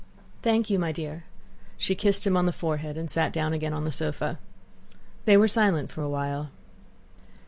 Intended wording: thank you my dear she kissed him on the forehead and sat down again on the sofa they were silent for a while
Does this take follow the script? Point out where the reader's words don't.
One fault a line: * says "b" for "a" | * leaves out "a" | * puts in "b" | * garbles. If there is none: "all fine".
all fine